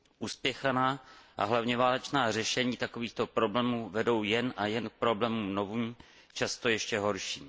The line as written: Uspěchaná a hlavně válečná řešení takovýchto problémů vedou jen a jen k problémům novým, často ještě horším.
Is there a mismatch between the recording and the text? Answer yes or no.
no